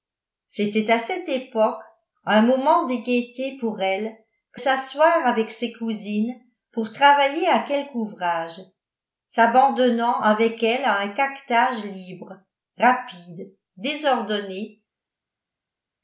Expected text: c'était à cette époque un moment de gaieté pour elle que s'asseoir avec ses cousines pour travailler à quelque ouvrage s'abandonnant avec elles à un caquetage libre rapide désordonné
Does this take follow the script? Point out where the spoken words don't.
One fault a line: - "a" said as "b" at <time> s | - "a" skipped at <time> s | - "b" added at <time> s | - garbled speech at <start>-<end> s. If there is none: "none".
none